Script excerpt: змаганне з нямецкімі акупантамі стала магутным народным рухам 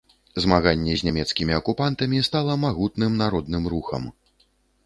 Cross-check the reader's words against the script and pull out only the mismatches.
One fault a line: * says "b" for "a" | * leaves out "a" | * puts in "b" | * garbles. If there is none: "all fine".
all fine